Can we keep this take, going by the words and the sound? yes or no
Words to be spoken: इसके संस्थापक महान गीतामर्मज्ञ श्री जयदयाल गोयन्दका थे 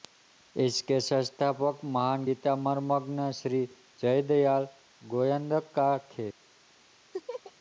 no